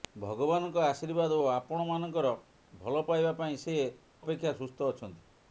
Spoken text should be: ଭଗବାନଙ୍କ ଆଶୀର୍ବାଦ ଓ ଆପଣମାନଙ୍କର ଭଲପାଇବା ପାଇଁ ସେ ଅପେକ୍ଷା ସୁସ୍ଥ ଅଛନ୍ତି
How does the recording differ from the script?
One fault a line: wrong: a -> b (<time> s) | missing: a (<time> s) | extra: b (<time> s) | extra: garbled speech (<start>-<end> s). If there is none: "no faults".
no faults